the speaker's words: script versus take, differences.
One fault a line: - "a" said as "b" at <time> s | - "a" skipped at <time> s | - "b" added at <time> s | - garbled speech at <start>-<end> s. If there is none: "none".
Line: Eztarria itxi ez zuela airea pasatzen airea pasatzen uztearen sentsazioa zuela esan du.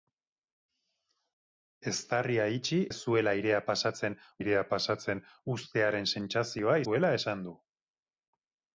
none